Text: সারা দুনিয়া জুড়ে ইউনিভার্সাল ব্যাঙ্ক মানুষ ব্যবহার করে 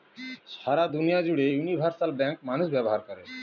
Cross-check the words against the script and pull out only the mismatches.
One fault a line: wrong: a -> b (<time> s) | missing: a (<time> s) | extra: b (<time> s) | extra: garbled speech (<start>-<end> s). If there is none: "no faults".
no faults